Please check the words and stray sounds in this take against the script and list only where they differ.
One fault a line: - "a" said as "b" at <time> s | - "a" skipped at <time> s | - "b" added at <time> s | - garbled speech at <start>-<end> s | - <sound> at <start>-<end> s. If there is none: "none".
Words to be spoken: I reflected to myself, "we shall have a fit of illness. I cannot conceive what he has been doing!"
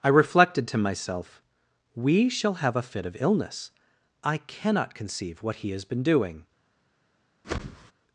- whoosh at 7.4-7.9 s